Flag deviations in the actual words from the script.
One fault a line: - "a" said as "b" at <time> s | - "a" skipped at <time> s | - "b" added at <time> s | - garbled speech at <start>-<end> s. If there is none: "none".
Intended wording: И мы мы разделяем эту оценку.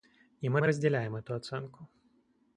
none